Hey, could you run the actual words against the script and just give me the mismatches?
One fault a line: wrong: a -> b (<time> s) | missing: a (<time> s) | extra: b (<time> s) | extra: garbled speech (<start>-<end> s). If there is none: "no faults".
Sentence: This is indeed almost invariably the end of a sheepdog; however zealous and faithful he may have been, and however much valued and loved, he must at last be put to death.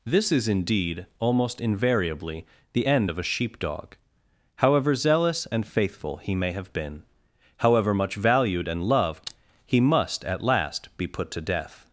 missing: and (7.0 s)